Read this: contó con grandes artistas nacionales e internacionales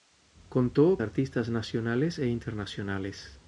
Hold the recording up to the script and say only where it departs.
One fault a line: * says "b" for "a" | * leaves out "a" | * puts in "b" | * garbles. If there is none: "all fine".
* leaves out "con grandes"